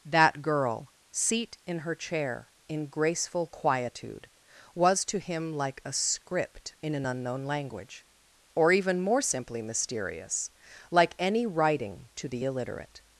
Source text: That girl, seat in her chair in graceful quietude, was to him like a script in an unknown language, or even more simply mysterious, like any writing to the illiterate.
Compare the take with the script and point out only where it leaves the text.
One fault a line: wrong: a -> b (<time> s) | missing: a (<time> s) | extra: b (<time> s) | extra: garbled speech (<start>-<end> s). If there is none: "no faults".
no faults